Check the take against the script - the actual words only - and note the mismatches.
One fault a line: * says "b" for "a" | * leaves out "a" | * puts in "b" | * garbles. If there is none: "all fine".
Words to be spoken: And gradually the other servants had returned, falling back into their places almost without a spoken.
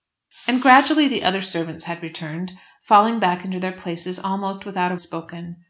all fine